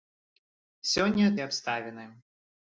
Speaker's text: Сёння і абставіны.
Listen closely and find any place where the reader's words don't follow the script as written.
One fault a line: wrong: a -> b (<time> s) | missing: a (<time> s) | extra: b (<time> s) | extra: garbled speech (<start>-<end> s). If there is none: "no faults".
no faults